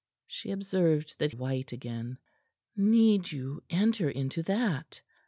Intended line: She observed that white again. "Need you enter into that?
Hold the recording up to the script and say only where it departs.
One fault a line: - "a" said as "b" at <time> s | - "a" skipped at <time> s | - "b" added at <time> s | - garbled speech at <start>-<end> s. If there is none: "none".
none